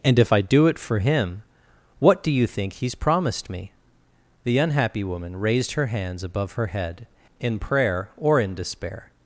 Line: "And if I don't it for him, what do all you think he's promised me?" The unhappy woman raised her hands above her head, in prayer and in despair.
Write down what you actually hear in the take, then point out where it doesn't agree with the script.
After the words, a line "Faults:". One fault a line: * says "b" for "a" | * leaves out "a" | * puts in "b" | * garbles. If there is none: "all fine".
"And if I do it for him, what do you think he's promised me?" The unhappy woman raised her hands above her head, in prayer or in despair.
Faults:
* says "do" for "don't"
* leaves out "all"
* says "or" for "and"